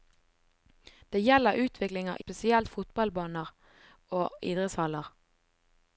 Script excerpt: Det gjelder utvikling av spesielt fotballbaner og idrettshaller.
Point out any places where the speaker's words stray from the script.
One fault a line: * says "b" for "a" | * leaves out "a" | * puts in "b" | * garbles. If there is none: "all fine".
all fine